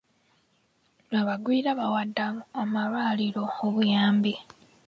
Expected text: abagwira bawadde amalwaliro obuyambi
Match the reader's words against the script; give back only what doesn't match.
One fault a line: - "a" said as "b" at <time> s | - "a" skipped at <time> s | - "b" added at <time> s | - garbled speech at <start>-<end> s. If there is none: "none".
none